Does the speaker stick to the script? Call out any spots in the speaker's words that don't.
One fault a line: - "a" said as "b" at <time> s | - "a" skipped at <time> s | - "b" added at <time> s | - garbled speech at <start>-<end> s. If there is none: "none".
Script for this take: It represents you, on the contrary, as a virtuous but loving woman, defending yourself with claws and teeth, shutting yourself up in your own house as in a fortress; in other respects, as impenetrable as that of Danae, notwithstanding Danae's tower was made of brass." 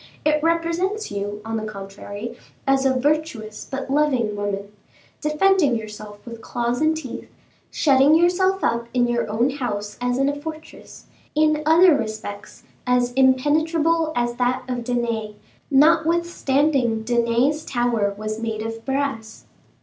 none